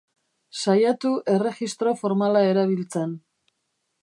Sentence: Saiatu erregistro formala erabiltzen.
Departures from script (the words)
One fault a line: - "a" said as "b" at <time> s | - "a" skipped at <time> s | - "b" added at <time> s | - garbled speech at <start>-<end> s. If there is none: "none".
none